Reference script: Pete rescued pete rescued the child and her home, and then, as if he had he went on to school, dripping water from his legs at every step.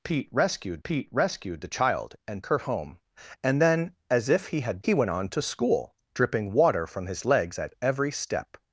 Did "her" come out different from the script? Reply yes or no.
no